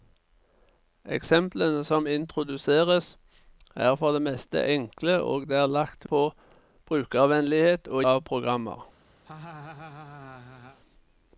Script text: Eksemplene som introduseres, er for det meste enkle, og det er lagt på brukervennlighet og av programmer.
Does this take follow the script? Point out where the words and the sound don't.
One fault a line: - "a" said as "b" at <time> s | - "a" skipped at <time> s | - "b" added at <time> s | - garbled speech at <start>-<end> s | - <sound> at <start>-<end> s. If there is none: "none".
- laugh at 9.3-10.8 s